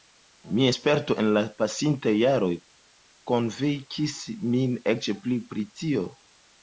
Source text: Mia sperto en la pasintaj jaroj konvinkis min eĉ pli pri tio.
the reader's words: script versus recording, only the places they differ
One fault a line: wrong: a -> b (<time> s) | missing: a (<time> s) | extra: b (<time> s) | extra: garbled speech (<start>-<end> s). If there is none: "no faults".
no faults